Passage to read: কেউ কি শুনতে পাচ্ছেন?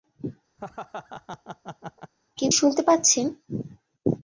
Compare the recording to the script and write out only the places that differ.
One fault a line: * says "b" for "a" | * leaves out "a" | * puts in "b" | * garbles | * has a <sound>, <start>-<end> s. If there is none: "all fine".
* has a laugh, 0.6-2.1 s
* leaves out "কি"